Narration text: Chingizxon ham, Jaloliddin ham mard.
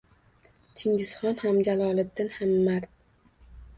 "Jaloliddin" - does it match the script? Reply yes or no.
yes